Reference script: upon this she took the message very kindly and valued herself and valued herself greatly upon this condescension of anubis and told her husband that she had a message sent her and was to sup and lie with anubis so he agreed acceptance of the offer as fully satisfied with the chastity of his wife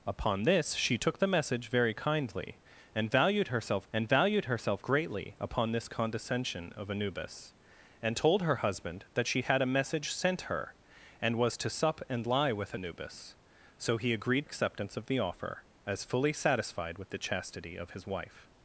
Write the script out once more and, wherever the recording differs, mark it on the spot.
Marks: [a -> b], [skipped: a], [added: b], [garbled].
upon this she took the message very kindly and valued herself and valued herself greatly upon this condescension of anubis and told her husband that she had a message sent her and was to sup and lie with anubis so he agreed acceptance of the offer as fully satisfied with the chastity of his wife